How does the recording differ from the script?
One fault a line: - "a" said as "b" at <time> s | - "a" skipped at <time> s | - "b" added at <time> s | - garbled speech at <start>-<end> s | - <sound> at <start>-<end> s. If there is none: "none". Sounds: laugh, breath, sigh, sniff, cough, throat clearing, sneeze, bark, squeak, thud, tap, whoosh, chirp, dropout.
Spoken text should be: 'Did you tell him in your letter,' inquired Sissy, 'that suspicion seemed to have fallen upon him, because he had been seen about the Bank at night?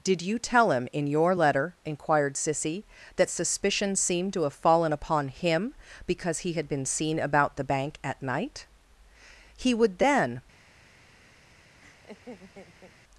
- "He would then" added at 9.6 s
- laugh at 11.8-12.9 s